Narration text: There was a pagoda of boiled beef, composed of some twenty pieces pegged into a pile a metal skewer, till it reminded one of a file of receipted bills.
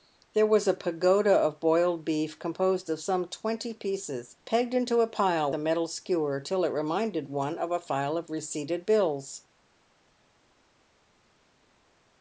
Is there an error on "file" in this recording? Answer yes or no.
no